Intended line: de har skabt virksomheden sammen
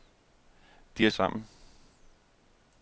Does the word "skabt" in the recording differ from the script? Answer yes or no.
yes